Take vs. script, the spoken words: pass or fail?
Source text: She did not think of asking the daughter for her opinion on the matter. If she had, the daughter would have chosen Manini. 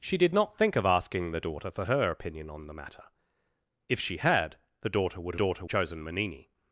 fail